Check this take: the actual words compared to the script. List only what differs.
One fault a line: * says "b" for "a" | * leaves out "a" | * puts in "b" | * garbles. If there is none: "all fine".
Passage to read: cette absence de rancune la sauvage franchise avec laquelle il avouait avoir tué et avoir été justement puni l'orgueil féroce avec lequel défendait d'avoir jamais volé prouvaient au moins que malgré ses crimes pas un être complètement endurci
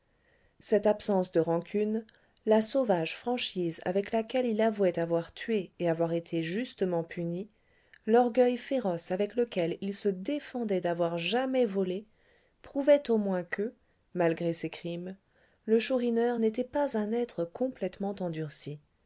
* puts in "il se"
* puts in "le chourineur n'était"